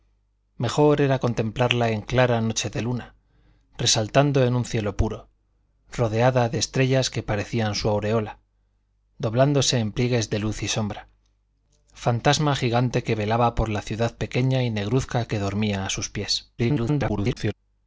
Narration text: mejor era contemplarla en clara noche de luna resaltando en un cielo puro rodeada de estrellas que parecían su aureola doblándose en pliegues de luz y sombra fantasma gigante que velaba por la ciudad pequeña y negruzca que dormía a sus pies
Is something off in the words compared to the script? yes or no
yes